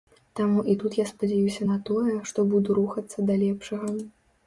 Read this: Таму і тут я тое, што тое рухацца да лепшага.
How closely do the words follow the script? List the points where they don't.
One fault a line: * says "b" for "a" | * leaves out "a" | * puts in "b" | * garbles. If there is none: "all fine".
* puts in "спадзяюся на"
* says "буду" for "тое"